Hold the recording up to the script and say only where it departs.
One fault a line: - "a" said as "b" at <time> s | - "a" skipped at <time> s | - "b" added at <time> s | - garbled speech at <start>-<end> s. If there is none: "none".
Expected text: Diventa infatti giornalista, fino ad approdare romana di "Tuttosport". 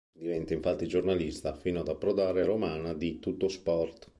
none